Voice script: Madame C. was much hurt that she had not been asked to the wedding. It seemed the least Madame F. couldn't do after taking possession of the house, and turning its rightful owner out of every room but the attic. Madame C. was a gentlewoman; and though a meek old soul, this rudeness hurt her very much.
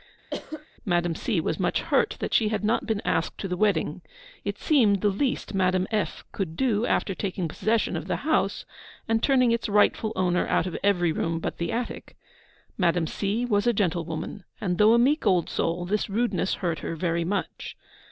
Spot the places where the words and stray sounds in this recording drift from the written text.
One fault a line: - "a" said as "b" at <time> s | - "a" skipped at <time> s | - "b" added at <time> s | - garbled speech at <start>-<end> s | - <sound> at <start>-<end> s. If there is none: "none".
- cough at 0.3-0.7 s
- "couldn't" said as "could" at 6.3 s